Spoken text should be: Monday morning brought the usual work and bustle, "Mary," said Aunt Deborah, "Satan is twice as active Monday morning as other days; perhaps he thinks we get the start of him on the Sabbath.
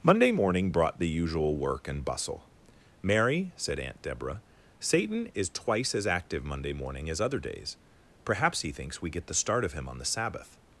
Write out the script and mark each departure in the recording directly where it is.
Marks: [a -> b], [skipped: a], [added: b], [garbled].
Monday morning brought the usual work and bustle, "Mary," said Aunt Deborah, "Satan is twice as active Monday morning as other days; perhaps he thinks we get the start of him on the Sabbath.